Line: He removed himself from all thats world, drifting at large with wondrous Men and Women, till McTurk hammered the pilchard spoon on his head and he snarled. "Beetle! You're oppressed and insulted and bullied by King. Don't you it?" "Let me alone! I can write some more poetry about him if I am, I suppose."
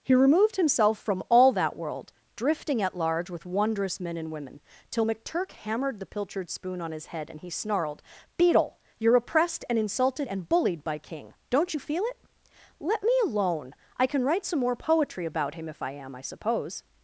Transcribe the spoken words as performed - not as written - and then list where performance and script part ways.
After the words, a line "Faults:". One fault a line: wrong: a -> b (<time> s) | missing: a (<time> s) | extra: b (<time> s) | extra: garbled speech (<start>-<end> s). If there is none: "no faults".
He removed himself from all that world, drifting at large with wondrous Men and Women, till McTurk hammered the pilchard spoon on his head and he snarled. "Beetle! You're oppressed and insulted and bullied by King. Don't you feel it?" "Let me alone! I can write some more poetry about him if I am, I suppose."
Faults:
wrong: thats -> that (1.5 s)
extra: feel (11.8 s)